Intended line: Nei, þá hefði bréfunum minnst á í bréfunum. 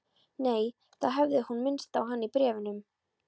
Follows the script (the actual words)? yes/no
no